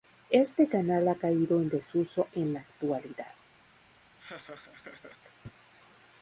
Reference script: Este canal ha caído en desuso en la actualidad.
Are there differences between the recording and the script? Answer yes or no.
no